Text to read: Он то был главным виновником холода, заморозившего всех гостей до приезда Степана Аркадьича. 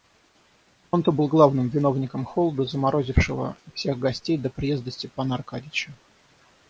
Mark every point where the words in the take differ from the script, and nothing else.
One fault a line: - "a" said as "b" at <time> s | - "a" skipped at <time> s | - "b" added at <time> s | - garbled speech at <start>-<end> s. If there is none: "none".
none